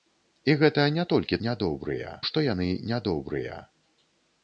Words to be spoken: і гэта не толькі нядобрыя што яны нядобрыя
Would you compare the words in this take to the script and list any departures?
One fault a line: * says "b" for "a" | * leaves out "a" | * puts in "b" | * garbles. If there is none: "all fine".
all fine